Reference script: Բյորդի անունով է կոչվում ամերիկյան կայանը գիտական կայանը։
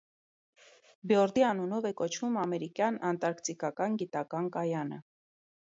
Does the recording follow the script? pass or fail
fail